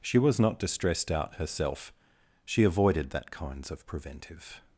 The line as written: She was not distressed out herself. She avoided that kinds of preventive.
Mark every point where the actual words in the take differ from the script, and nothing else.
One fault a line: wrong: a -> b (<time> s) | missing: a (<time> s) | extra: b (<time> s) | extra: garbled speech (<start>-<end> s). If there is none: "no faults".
no faults